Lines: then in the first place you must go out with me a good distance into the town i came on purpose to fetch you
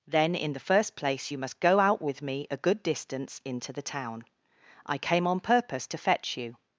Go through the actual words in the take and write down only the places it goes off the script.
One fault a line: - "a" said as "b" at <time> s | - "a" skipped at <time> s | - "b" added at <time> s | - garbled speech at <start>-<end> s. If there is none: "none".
none